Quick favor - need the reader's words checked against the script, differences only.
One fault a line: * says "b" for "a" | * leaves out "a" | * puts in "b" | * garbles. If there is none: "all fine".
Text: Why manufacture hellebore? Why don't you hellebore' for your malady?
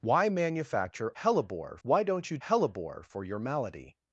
all fine